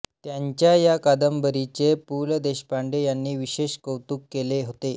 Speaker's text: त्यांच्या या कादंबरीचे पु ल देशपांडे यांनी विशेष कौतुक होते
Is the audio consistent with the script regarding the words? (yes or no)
no